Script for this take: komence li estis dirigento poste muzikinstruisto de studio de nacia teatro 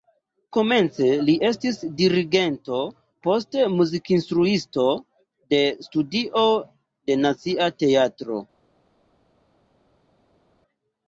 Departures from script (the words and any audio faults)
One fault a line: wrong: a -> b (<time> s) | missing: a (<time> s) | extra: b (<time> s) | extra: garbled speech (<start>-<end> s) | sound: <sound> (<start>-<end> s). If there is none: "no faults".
no faults